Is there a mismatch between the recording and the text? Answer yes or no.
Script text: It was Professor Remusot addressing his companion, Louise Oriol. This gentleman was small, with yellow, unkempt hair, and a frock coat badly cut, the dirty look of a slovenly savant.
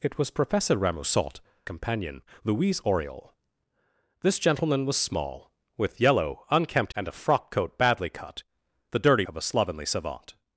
yes